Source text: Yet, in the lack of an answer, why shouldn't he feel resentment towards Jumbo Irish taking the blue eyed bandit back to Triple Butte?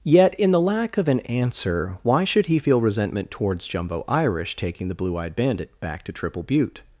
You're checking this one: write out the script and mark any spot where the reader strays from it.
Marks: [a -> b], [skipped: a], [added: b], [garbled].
Yet, in the lack of an answer, why [shouldn't -> should] he feel resentment towards Jumbo Irish taking the blue eyed bandit back to Triple Butte?